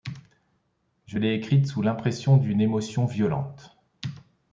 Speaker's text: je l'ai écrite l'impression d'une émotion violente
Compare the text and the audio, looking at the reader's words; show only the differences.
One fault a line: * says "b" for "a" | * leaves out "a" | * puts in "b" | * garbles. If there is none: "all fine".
* puts in "sous"